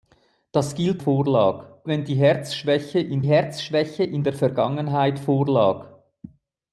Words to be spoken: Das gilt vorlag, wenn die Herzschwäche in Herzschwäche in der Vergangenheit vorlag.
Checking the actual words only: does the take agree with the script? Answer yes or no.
yes